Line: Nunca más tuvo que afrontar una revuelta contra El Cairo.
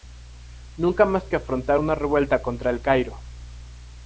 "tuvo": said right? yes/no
no